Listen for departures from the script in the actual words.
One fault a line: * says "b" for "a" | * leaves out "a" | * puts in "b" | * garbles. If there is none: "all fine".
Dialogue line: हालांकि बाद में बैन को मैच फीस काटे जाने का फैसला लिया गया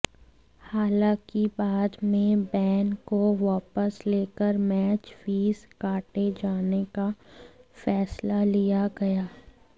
* puts in "वापस लेकर"